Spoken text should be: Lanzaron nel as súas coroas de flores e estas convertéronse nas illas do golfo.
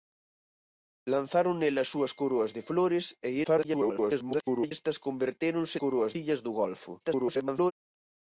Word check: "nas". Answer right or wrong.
wrong